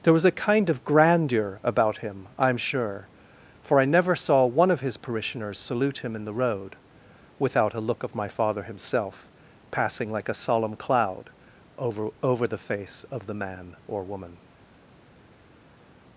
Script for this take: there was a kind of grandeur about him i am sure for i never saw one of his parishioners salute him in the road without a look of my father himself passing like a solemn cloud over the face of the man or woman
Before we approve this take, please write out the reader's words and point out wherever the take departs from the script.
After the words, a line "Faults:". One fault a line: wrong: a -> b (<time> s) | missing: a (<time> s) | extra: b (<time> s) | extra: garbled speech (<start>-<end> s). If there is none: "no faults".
there was a kind of grandeur about him i am sure for i never saw one of his parishioners salute him in the road without a look of my father himself passing like a solemn cloud over over the face of the man or woman
Faults:
extra: over (12.2 s)